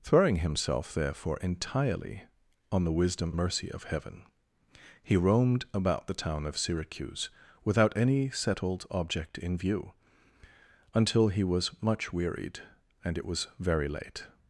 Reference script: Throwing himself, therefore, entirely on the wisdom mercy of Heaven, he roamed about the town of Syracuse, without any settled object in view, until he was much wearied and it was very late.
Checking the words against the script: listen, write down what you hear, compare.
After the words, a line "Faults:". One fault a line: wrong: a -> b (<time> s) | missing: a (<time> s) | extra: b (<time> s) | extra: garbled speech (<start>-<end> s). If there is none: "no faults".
Throwing himself, therefore, entirely on the wisdom mercy of Heaven, he roamed about the town of Syracuse, without any settled object in view, until he was much wearied and it was very late.
Faults:
no faults